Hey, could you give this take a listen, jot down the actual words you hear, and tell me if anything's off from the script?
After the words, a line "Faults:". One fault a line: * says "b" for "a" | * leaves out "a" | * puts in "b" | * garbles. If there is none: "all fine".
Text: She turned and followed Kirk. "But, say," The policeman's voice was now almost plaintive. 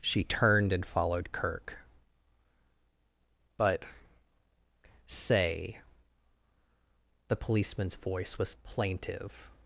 She turned and followed Kirk. "But, say," The policeman's voice was plaintive.
Faults:
* leaves out "now almost"